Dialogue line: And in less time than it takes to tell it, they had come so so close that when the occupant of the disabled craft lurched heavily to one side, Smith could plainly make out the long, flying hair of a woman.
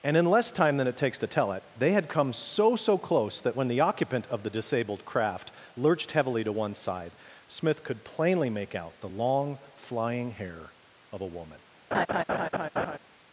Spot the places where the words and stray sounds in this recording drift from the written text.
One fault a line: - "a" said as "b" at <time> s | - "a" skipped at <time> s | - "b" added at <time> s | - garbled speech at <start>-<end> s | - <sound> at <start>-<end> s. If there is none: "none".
- laugh at 11.9-13.0 s